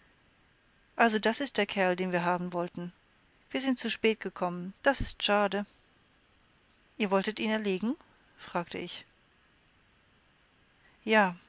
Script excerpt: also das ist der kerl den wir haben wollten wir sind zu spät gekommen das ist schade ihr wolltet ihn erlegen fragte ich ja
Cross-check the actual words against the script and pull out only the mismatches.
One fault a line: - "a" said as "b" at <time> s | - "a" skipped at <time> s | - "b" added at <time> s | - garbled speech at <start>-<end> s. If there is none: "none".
none